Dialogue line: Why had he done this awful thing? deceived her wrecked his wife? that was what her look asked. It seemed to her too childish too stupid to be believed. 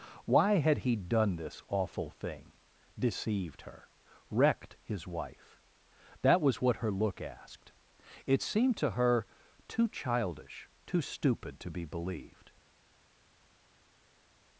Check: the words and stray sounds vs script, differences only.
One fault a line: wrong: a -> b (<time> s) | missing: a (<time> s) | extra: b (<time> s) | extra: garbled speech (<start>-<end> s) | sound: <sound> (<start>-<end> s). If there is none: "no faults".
no faults